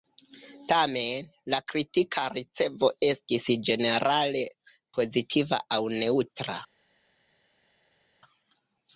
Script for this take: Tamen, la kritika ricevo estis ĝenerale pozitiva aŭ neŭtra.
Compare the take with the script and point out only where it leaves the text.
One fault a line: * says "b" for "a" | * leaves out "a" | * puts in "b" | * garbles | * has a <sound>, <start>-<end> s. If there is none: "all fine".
all fine